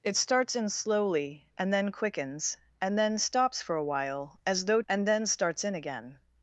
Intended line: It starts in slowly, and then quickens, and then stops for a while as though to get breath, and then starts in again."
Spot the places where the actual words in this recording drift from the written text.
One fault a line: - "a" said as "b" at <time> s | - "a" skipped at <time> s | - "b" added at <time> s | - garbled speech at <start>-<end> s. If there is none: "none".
- "to get breath" skipped at 4.8 s